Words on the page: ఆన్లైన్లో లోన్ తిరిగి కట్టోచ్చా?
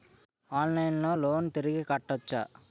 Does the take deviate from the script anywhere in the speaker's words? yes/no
no